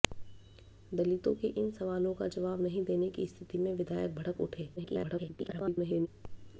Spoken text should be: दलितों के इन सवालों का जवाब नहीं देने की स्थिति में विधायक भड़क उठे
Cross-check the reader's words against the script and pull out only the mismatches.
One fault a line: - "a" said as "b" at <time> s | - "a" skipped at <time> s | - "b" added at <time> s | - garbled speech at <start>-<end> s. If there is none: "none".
- garbled speech at 4.8-6.1 s